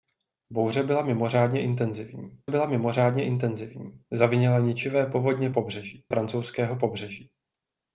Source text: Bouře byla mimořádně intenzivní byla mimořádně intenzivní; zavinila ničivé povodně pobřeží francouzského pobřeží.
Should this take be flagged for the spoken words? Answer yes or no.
no